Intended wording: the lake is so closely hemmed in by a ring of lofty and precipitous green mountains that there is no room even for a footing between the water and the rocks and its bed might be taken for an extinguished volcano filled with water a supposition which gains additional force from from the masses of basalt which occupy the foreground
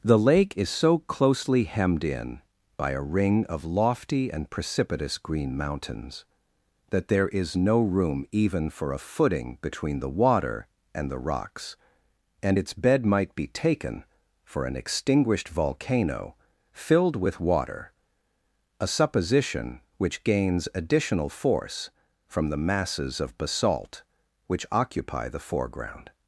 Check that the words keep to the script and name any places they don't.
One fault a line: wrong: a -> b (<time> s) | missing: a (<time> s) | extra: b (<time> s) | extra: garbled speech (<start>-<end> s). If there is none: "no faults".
missing: from (22.5 s)